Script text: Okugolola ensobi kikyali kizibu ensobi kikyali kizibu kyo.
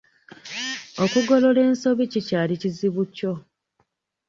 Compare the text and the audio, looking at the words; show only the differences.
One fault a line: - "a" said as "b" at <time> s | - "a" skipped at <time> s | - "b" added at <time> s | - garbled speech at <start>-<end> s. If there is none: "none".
- "ensobi kikyali kizibu" skipped at 3.0 s